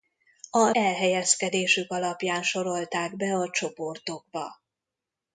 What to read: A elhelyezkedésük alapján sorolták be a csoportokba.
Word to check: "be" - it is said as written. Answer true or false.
true